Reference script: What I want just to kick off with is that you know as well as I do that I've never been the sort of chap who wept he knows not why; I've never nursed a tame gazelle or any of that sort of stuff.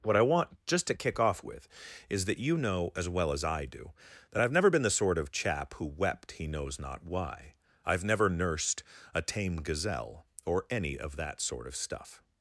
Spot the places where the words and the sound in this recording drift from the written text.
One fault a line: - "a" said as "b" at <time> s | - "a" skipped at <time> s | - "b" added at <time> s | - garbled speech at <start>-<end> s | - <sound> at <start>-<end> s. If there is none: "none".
none